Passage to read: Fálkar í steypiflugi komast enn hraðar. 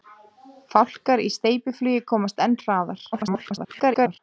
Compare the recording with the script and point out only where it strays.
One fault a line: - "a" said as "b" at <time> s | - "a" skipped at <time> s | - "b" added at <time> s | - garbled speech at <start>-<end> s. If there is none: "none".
- garbled speech at 3.1-4.2 s